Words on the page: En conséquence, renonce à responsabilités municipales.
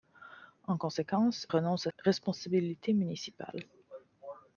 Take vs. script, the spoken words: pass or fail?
pass